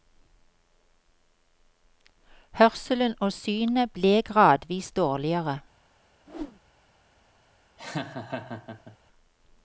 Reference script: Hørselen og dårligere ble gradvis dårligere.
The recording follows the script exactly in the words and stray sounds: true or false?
false